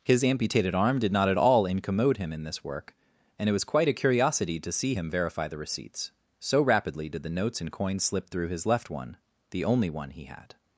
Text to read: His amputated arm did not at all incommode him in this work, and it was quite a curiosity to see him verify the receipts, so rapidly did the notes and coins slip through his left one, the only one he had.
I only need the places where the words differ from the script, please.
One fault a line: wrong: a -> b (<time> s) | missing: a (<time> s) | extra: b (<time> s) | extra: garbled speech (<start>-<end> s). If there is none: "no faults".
no faults